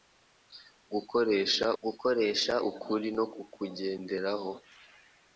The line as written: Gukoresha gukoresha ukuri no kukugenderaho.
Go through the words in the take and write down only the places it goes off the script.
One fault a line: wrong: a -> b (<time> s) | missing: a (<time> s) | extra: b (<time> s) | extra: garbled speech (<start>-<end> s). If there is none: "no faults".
no faults